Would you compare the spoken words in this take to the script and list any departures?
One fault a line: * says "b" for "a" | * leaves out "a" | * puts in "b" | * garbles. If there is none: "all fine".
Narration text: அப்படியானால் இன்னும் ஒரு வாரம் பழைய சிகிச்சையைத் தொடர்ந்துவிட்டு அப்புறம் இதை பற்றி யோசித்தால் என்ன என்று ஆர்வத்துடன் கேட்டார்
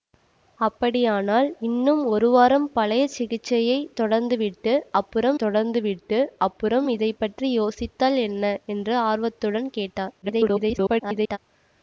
* puts in "தொடர்ந்துவிட்டு அப்புறம்"
* garbles